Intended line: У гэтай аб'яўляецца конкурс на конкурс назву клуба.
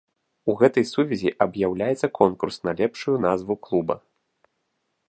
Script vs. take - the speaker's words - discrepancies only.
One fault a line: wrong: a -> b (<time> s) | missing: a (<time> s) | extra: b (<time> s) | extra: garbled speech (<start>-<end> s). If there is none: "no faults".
extra: сувязі (0.9 s)
wrong: конкурс -> лепшую (2.8 s)